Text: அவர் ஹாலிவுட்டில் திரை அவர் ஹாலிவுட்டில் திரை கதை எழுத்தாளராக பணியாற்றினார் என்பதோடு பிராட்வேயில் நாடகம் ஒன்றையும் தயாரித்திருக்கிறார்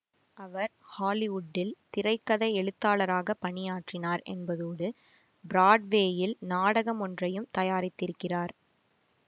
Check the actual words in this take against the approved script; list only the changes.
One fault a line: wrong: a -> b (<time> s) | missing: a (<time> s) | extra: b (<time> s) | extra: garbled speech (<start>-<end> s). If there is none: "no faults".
missing: அவர் ஹாலிவுட்டில் திரை (2.1 s)